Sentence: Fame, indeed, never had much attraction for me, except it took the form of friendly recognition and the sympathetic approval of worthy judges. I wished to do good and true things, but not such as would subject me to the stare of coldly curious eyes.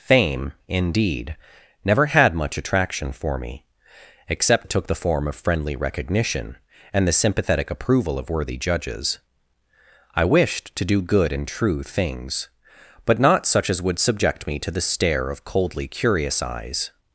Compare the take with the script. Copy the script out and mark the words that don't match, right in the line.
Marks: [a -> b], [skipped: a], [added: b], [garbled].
Fame, indeed, never had much attraction for me, except it took the form of friendly recognition and the sympathetic approval of worthy judges. I wished to do good and true things, but not such as would subject me to the stare of coldly curious eyes.